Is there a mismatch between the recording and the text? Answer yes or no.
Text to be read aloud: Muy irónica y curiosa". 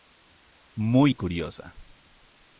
yes